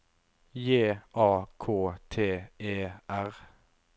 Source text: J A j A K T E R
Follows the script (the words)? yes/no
no